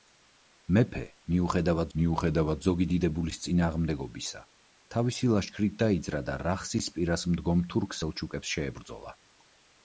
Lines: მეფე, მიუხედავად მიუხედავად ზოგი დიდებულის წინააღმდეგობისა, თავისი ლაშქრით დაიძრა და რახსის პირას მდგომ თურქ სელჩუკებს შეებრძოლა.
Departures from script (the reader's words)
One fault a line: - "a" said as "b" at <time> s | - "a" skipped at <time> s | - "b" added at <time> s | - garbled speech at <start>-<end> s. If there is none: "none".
none